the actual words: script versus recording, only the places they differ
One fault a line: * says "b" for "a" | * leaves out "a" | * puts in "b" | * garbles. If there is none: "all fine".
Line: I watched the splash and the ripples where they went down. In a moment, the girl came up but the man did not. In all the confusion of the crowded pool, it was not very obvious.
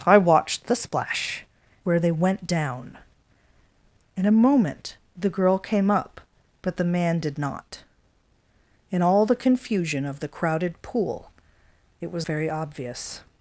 * leaves out "and the ripples"
* leaves out "not"